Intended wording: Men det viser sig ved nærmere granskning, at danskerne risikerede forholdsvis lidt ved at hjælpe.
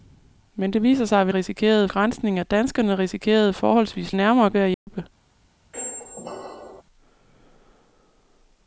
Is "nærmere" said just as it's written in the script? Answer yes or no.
no